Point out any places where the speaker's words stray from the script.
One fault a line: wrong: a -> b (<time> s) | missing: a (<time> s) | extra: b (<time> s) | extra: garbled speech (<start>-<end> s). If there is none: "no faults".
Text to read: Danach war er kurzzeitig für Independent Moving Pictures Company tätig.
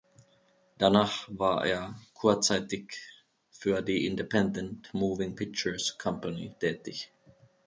extra: die (3.8 s)